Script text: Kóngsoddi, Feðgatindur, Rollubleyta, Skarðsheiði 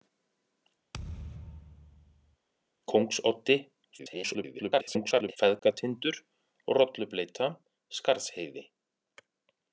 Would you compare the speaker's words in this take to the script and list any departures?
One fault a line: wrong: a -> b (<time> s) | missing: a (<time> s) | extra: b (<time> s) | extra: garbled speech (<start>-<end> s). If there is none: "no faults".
extra: garbled speech (4.0-5.4 s)